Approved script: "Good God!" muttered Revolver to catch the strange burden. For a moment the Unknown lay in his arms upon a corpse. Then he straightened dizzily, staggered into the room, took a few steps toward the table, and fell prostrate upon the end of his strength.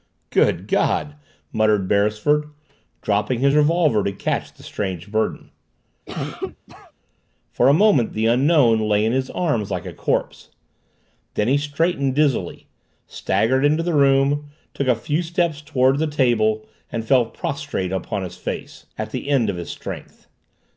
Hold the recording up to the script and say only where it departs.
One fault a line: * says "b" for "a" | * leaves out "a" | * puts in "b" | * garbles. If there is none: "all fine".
* puts in "Beresford dropping his"
* says "like" for "upon"
* puts in "his face at"